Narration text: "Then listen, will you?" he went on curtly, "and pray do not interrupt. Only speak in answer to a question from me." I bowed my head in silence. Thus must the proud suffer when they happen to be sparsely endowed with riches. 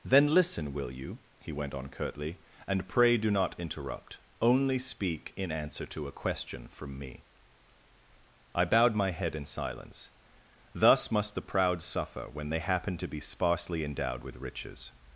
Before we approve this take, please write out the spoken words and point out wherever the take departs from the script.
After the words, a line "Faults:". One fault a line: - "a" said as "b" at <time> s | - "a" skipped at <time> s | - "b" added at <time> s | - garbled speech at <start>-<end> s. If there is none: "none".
"Then listen, will you?" he went on curtly, "and pray do not interrupt. Only speak in answer to a question from me." I bowed my head in silence. Thus must the proud suffer when they happen to be sparsely endowed with riches.
Faults:
none